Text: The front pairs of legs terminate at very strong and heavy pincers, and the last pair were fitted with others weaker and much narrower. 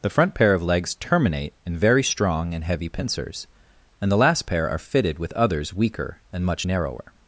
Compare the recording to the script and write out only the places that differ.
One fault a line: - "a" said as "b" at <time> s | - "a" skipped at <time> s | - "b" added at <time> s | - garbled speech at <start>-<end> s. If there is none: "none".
- "pairs" said as "pair" at 0.3 s
- "at" said as "in" at 1.6 s
- "were" said as "are" at 4.7 s